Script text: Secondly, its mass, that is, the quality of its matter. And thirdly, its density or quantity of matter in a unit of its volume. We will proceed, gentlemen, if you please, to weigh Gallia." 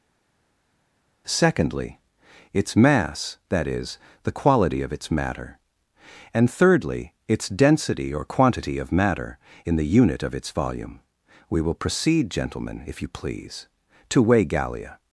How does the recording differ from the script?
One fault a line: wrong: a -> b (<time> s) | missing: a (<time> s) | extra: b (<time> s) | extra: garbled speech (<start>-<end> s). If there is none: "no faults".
wrong: a -> the (9.8 s)